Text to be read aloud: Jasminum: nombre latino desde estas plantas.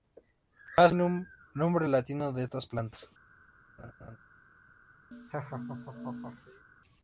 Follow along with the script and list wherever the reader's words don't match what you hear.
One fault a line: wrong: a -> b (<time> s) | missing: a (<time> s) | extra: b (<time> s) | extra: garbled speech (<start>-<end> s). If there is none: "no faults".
wrong: desde -> de (2.3 s)